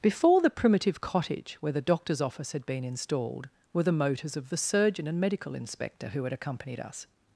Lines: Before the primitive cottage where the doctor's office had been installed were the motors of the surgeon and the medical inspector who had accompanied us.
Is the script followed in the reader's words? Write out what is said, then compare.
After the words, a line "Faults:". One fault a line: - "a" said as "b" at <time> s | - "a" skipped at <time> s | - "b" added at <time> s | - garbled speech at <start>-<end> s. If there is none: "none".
Before the primitive cottage where the doctor's office had been installed were the motors of the surgeon and medical inspector who had accompanied us.
Faults:
- "the" skipped at 5.2 s